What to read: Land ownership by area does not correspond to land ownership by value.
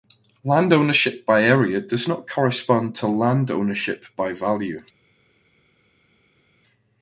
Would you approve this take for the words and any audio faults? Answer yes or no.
yes